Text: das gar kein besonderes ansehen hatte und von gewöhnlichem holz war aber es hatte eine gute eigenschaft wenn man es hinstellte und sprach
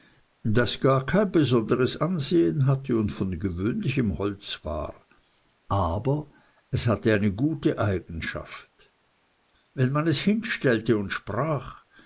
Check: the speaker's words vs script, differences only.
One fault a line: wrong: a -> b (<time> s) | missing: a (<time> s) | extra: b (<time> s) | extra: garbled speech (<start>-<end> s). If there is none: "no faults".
no faults